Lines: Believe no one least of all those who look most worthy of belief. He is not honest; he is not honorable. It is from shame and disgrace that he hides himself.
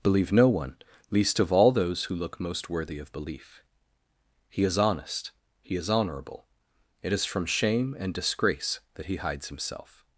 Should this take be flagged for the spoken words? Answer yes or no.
yes